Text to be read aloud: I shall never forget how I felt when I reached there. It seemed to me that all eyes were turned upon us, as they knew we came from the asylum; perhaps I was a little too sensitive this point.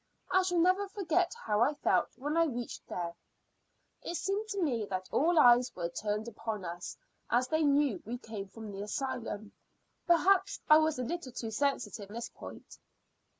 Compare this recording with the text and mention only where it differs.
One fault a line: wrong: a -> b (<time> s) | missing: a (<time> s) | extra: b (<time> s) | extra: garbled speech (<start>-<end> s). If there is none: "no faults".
no faults